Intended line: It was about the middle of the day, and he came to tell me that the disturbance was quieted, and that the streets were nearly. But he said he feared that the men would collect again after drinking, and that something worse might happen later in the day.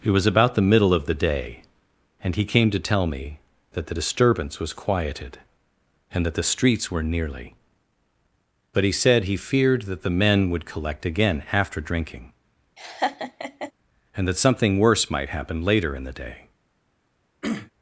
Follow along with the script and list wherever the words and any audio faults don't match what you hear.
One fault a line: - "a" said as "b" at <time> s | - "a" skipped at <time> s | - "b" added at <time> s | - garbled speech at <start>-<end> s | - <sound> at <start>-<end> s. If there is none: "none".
- laugh at 12.8-13.7 s
- throat clearing at 17.4-17.7 s